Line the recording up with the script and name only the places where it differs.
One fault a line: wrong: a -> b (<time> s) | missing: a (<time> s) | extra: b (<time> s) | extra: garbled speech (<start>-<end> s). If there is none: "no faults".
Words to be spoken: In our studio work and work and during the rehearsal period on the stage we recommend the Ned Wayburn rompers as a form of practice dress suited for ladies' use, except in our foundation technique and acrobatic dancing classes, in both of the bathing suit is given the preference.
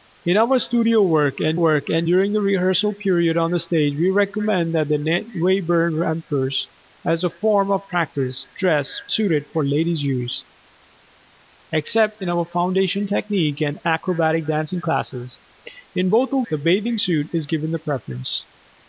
no faults